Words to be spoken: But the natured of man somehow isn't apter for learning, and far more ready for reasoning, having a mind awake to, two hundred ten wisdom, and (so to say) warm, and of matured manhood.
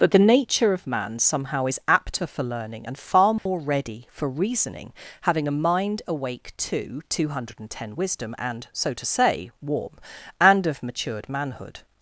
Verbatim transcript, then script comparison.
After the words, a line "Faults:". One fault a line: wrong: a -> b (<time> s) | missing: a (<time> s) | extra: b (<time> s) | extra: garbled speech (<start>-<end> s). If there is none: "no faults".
But the nature of man somehow is apter for learning, and far more ready for reasoning, having a mind awake to, two hundred ten wisdom, and (so to say) warm, and of matured manhood.
Faults:
wrong: natured -> nature (0.3 s)
wrong: isn't -> is (1.7 s)